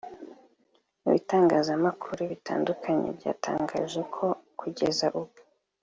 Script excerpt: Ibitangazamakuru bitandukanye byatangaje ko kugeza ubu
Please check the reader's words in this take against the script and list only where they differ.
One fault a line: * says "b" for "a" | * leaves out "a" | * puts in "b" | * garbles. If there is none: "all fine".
all fine